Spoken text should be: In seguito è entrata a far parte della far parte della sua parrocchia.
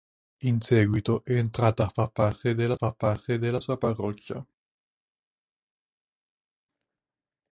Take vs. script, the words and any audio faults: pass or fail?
pass